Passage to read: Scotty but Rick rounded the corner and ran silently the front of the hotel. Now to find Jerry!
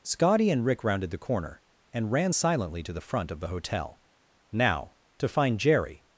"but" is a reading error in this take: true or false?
true